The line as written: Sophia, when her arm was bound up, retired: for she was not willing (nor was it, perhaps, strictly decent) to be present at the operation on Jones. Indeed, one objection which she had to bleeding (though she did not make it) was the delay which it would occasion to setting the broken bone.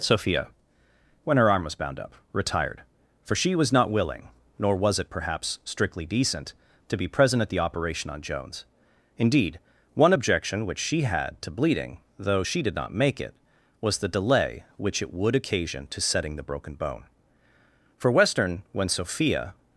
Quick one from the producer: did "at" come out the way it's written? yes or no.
yes